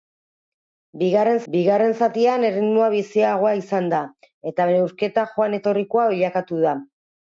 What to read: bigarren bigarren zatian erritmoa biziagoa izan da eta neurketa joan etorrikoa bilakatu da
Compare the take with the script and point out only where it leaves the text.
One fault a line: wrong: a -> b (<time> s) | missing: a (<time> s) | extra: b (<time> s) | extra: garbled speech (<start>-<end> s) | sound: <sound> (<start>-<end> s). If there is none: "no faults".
no faults